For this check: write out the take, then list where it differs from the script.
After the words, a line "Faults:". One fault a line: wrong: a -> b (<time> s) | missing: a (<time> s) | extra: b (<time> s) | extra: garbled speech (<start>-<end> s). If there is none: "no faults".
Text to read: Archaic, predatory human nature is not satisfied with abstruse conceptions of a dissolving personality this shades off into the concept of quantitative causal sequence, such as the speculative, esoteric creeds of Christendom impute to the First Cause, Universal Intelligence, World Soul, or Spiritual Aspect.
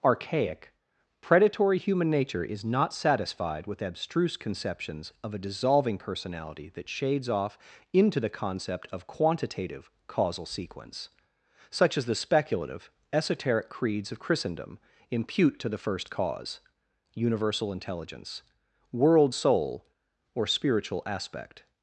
Archaic, predatory human nature is not satisfied with abstruse conceptions of a dissolving personality that shades off into the concept of quantitative causal sequence, such as the speculative, esoteric creeds of Christendom impute to the First Cause, Universal Intelligence, World Soul, or Spiritual Aspect.
Faults:
wrong: this -> that (6.7 s)